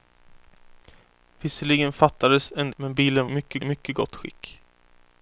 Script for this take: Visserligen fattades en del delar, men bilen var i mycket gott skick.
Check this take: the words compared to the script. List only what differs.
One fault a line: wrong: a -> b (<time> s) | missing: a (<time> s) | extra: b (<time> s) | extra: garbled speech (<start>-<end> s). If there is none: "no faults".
missing: del delar (2.7 s)
wrong: var -> mycket (3.3 s)